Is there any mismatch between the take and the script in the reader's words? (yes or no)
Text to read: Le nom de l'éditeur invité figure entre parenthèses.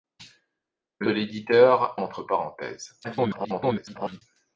yes